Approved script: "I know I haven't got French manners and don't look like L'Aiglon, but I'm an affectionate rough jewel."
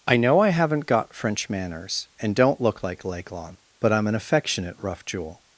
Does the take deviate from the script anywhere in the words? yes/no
no